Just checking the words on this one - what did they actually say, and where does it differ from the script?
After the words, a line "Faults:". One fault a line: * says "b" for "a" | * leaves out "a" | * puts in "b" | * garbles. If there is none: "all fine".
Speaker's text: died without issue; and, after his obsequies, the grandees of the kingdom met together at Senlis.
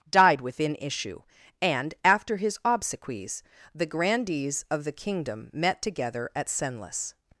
died within issue; and, after his obsequies, the grandees of the kingdom met together at Senlis.
Faults:
* says "within" for "without"